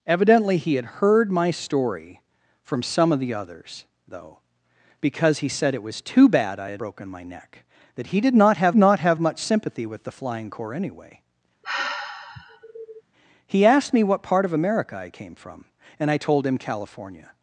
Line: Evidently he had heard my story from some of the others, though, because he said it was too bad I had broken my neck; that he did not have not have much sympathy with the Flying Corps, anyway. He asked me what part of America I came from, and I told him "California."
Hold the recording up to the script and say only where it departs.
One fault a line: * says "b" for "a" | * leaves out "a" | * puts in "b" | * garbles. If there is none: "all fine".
all fine